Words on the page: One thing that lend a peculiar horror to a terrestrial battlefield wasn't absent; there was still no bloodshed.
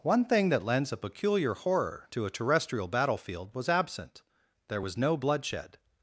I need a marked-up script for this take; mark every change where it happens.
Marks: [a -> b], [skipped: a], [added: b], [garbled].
One thing that [lend -> lends] a peculiar horror to a terrestrial battlefield [wasn't -> was] absent; there was [skipped: still] no bloodshed.